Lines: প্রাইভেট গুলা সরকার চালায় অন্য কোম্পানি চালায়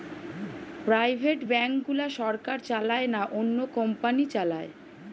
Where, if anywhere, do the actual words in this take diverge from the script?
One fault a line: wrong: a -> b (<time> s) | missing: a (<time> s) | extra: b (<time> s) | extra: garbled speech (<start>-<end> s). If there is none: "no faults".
extra: ব্যাঙ্ক (1.5 s)
extra: না (3.1 s)